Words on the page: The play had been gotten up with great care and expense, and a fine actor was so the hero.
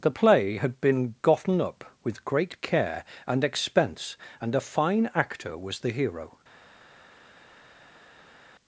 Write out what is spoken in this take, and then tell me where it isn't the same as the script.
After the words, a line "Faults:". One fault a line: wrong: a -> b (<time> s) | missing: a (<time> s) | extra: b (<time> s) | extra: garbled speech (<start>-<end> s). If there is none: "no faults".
The play had been gotten up with great care and expense, and a fine actor was the hero.
Faults:
missing: so (5.8 s)